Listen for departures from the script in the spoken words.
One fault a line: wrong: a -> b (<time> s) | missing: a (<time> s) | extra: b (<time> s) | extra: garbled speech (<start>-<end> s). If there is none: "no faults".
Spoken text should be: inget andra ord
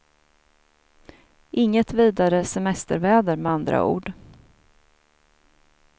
extra: vidare semesterväder med (1.9 s)